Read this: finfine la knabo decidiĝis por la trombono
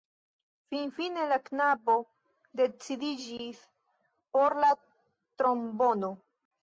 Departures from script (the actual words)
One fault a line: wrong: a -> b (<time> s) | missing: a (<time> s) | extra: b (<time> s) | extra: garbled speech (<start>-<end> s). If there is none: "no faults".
no faults